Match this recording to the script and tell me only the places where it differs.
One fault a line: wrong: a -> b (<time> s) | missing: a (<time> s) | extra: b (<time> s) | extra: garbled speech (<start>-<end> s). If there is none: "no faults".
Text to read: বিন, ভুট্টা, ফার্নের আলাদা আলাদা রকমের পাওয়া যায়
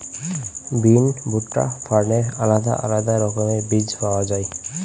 extra: বীজ (3.7 s)